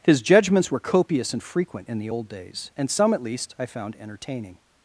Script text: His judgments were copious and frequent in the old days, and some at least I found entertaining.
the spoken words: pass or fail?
pass